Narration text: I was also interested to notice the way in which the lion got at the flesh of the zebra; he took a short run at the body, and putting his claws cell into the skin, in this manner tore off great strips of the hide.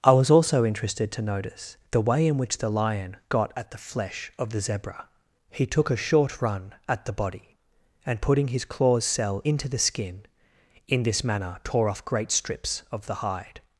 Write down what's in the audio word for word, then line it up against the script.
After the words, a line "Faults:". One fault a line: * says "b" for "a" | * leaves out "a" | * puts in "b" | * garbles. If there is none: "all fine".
I was also interested to notice the way in which the lion got at the flesh of the zebra; he took a short run at the body, and putting his claws cell into the skin, in this manner tore off great strips of the hide.
Faults:
all fine